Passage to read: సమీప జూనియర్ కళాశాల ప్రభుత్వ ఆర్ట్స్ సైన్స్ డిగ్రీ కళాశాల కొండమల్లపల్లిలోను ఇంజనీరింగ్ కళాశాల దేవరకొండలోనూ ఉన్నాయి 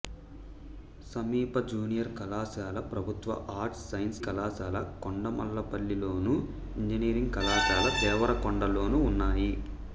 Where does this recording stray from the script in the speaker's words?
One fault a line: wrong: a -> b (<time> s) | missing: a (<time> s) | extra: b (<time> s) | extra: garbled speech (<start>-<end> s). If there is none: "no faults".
missing: డిగ్రీ (4.2 s)